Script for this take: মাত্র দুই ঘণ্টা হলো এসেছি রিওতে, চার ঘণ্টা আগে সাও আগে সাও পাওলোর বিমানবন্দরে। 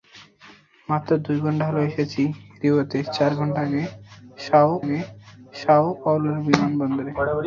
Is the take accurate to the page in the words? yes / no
yes